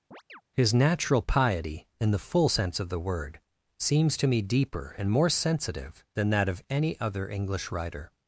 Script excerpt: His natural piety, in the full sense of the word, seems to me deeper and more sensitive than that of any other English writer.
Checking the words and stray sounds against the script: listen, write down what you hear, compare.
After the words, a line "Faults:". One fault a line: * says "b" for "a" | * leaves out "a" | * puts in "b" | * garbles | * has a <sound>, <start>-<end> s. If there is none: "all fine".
His natural piety, in the full sense of the word, seems to me deeper and more sensitive than that of any other English writer.
Faults:
* has a chirp, 0.1-0.4 s